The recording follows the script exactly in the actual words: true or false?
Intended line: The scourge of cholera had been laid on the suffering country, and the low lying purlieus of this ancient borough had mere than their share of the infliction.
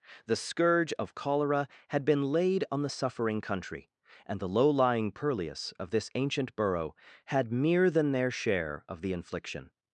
true